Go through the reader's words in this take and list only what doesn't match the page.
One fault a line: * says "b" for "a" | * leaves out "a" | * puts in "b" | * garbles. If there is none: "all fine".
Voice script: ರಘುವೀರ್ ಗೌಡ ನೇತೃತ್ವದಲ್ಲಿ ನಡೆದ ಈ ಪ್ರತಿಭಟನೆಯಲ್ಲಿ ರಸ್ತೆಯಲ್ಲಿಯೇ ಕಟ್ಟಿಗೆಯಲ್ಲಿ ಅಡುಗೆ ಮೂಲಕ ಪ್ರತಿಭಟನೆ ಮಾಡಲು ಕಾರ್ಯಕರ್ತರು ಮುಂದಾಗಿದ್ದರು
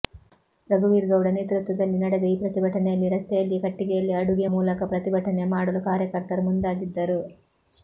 all fine